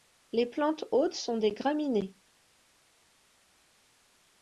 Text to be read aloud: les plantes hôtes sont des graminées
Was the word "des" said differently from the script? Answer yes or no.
no